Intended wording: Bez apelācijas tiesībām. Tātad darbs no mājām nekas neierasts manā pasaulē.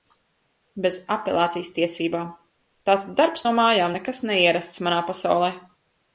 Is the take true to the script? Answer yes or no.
yes